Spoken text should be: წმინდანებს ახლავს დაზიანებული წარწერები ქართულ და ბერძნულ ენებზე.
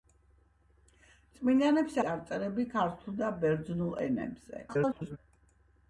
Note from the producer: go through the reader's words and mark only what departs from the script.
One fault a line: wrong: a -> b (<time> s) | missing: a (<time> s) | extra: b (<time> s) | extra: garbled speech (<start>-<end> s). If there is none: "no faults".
missing: ახლავს დაზიანებული (2.0 s)
extra: garbled speech (4.7-5.2 s)